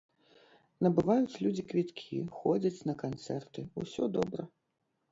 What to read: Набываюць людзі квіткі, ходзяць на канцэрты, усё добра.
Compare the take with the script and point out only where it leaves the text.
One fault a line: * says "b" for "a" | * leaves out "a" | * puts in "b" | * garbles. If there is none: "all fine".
all fine